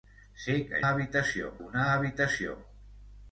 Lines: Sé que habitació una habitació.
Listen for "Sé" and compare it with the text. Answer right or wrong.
right